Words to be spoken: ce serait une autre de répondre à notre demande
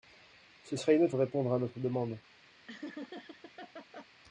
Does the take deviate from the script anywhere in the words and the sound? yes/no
yes